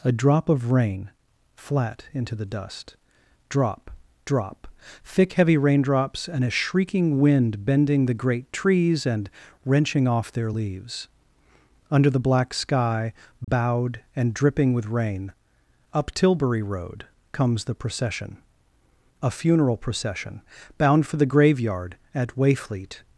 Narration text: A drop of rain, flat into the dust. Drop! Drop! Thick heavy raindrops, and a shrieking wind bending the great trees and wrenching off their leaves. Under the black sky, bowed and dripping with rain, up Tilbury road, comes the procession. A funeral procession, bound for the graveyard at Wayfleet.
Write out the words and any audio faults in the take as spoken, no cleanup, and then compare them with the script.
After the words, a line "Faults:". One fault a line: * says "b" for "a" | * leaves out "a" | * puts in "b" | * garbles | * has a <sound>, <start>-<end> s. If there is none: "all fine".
A drop of rain, flat into the dust. Drop! Drop! Thick heavy raindrops, and a shrieking wind bending the great trees and wrenching off their leaves. Under the black sky, bowed and dripping with rain, up Tilbury road, comes the procession. A funeral procession, bound for the graveyard at Wayfleet.
Faults:
* has a dropout, 13.4-13.5 s